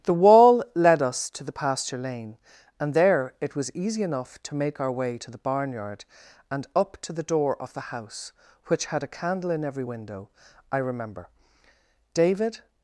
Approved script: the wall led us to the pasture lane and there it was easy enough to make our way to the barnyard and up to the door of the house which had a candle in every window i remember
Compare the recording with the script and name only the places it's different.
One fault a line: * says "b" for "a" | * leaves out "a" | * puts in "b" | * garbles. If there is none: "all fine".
* puts in "david"